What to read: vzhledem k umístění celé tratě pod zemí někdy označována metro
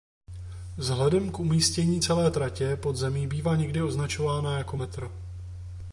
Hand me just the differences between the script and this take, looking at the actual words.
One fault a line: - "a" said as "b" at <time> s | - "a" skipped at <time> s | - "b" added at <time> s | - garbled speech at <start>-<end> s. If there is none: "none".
- "bývá" added at 3.3 s
- "jako" added at 4.6 s